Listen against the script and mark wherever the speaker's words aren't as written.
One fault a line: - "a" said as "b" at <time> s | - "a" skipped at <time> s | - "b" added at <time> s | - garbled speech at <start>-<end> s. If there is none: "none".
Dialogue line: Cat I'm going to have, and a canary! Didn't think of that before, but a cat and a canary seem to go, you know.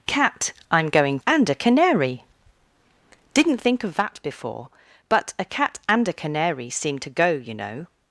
- "to have" skipped at 1.2 s